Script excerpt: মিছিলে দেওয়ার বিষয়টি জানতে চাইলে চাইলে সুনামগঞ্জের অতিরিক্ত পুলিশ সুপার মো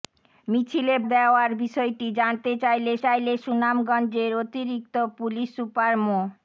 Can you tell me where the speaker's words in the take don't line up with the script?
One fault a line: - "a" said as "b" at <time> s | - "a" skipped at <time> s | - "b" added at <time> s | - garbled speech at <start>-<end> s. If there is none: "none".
none